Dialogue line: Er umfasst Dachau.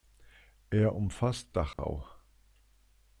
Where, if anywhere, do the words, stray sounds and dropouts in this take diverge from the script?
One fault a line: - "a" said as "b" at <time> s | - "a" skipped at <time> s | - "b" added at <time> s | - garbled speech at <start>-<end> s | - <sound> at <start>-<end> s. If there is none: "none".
- dropout at 1.7-1.8 s